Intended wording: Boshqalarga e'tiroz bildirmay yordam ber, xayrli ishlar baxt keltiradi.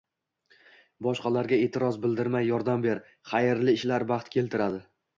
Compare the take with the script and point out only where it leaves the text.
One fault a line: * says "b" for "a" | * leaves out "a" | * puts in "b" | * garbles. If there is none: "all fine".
all fine